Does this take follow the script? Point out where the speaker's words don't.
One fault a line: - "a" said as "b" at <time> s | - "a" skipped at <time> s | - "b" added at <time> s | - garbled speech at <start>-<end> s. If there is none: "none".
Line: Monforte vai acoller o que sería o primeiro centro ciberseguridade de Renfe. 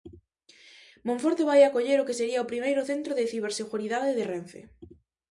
- "de" added at 3.2 s